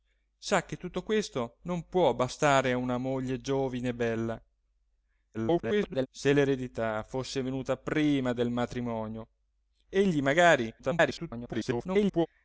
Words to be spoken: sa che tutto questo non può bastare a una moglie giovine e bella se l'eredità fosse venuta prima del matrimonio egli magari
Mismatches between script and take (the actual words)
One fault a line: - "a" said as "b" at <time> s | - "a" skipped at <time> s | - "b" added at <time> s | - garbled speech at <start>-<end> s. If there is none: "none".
- garbled speech at 5.3-6.1 s
- garbled speech at 10.8-12.3 s